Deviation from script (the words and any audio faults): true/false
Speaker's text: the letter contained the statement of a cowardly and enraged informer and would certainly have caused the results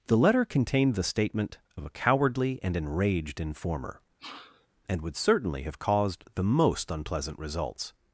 true